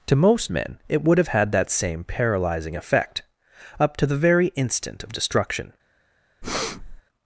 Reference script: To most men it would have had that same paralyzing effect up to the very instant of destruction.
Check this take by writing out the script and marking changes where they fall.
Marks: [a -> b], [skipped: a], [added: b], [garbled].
To most men it would have had that same paralyzing effect up to the very instant of destruction.